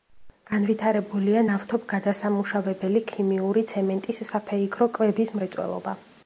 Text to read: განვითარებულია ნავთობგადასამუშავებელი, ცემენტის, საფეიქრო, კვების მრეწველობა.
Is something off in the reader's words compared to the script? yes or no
yes